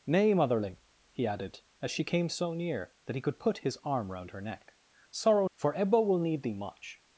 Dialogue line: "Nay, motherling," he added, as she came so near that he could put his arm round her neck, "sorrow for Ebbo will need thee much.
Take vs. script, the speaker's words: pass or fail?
pass